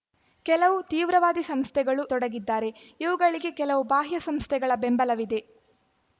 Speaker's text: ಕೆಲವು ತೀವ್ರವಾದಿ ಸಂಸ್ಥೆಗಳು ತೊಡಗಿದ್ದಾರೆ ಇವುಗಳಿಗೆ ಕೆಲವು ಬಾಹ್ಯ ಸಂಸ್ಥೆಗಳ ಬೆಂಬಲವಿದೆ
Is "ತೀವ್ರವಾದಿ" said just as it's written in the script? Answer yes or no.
yes